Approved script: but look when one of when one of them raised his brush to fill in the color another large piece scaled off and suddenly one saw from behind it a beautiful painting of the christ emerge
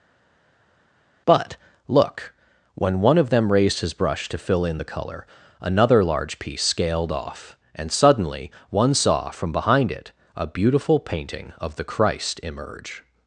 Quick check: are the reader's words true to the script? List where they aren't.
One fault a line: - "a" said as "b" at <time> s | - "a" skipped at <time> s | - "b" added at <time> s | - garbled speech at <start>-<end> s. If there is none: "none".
- "when one of" skipped at 3.3 s